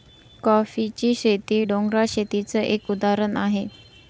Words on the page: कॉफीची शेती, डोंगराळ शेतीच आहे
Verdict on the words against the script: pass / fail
fail